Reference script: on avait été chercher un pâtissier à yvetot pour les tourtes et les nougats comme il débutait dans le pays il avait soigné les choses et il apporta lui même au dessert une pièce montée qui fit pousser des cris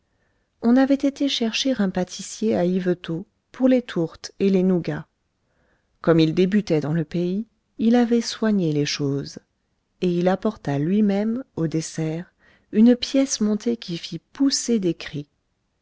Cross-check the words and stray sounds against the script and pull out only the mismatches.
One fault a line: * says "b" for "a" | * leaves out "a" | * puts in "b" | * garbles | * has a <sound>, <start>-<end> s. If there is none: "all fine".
all fine